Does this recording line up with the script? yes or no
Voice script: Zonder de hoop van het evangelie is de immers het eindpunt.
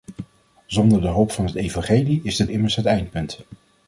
yes